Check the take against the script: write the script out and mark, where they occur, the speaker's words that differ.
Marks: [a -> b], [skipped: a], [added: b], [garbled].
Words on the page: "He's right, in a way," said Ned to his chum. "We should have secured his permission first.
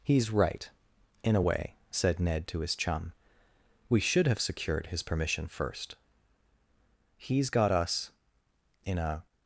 "He's right, in a way," said Ned to his chum. "We should have secured his permission first. [added: He's got us in a]